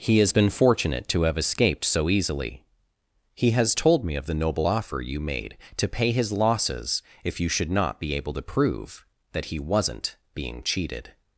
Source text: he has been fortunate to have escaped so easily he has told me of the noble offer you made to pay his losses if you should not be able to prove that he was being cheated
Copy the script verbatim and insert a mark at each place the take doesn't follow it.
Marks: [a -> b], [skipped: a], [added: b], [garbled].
he has been fortunate to have escaped so easily he has told me of the noble offer you made to pay his losses if you should not be able to prove that he [was -> wasn't] being cheated